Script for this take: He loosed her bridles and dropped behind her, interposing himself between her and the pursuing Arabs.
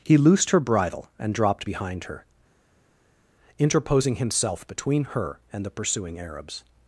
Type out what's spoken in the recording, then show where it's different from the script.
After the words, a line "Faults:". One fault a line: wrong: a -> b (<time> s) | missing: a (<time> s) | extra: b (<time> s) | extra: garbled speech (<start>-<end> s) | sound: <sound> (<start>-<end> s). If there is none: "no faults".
He loosed her bridle and dropped behind her, interposing himself between her and the pursuing Arabs.
Faults:
wrong: bridles -> bridle (0.6 s)